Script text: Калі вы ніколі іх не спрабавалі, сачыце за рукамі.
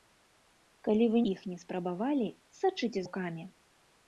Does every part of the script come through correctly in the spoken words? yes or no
no